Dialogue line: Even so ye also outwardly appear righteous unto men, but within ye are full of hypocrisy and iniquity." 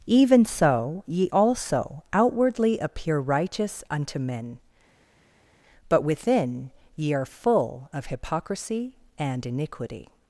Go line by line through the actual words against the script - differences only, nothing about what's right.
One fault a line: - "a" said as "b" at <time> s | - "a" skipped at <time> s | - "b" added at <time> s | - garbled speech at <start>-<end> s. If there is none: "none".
none